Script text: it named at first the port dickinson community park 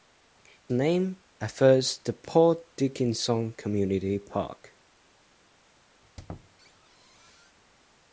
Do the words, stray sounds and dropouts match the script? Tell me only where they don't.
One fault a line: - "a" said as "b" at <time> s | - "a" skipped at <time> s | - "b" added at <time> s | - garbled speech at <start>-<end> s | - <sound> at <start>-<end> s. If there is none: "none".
- squeak at 6.0-7.6 s